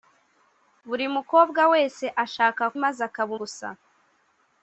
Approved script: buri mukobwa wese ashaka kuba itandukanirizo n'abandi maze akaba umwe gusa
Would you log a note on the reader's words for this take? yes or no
yes